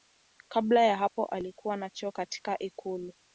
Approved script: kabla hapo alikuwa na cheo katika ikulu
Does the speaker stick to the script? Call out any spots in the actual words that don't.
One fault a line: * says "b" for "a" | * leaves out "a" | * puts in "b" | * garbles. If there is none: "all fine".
* puts in "ya"